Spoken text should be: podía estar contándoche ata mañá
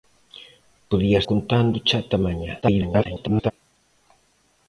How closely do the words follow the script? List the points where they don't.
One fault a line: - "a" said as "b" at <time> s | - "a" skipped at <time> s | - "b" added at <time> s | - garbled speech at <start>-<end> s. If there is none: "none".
- "estar" skipped at 1.2 s
- garbled speech at 2.6-3.5 s